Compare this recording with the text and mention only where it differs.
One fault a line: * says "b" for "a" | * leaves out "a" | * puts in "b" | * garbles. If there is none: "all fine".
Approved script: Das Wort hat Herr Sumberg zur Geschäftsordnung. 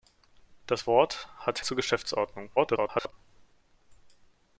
* leaves out "Herr Sumberg"
* garbles